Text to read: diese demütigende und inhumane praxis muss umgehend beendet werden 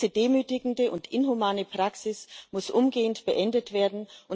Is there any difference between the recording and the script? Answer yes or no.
no